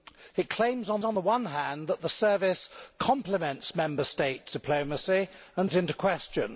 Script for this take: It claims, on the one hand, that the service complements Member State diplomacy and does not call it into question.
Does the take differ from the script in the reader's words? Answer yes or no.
yes